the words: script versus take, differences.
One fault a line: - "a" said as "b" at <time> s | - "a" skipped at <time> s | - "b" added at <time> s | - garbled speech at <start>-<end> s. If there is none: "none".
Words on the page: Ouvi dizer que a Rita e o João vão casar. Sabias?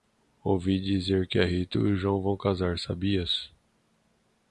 none